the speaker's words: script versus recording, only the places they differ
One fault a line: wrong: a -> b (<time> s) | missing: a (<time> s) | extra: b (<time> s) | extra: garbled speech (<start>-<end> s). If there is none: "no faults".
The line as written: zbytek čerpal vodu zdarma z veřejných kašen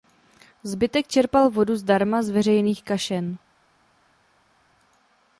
no faults